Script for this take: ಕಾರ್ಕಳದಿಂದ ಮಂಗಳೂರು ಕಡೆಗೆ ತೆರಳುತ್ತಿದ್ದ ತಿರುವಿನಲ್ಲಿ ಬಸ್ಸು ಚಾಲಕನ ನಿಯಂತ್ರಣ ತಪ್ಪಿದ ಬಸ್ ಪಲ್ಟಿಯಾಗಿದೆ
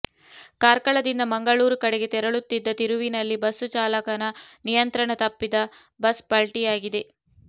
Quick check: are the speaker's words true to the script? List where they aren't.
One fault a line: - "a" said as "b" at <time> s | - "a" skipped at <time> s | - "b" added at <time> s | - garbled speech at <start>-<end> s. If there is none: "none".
none